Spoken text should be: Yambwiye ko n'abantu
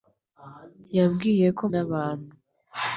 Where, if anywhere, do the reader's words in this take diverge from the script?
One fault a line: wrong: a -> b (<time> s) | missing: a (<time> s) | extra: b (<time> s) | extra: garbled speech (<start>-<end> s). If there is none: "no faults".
no faults